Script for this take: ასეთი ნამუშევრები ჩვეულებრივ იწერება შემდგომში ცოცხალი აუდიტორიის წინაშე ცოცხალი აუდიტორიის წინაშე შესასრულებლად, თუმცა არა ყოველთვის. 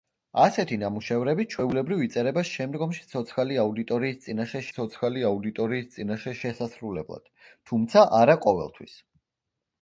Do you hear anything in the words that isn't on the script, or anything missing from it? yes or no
no